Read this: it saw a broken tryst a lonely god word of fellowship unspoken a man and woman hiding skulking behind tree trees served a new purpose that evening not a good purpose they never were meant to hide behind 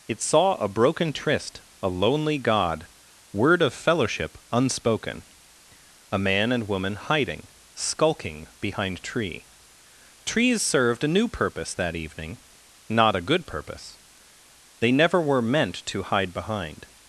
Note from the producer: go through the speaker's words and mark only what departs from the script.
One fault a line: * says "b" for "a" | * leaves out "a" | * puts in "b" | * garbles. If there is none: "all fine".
all fine